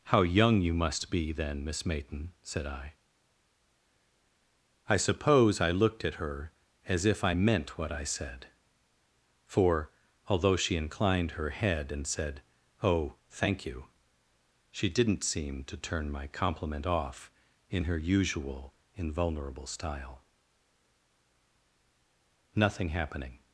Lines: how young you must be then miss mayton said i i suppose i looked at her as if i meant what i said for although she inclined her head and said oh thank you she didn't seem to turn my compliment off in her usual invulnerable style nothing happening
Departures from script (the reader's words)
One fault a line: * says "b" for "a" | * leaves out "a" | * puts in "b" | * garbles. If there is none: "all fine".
all fine